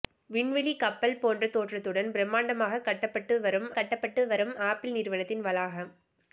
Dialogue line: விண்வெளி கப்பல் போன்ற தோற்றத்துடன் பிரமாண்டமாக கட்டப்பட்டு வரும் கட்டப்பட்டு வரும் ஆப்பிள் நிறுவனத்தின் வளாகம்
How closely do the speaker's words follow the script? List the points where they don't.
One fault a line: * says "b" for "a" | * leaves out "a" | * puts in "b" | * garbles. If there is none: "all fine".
all fine